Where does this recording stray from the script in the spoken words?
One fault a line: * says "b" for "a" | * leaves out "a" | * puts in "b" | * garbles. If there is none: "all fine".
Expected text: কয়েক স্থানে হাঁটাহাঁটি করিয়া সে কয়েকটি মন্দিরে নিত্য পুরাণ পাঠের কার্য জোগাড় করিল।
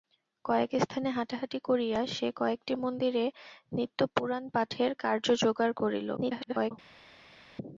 * garbles